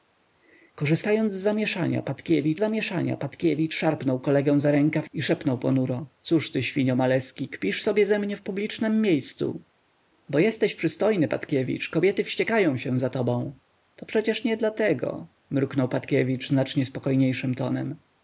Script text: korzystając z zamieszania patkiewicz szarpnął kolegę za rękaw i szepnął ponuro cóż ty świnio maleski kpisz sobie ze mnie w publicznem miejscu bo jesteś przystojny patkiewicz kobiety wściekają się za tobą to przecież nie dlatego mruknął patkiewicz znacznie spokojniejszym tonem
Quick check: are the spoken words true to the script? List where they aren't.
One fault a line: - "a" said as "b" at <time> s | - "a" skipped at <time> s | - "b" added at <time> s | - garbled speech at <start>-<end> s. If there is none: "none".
- "zamieszania patkiewicz" added at 2.6 s